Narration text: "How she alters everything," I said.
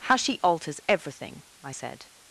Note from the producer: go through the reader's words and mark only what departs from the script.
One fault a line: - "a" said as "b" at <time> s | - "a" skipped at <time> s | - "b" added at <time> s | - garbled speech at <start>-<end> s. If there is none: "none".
none